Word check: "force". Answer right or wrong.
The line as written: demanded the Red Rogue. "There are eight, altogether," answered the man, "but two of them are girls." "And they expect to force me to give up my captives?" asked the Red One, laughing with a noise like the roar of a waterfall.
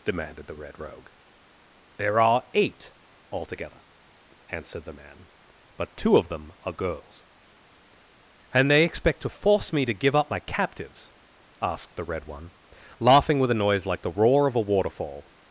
right